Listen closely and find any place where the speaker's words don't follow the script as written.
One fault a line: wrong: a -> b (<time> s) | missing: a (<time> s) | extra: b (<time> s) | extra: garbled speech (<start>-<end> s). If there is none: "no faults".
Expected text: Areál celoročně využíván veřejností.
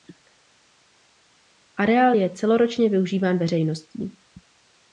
extra: je (2.1 s)